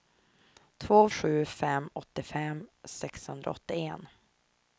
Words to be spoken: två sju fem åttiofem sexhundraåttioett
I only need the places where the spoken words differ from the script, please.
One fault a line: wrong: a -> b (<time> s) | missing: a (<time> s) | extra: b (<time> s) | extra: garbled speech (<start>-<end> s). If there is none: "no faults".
no faults